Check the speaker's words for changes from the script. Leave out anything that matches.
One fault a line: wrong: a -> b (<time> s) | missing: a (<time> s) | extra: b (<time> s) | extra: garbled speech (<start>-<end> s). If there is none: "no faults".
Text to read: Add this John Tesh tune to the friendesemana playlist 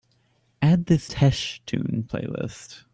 missing: John (1.1 s)
missing: to the friendesemana (2.0 s)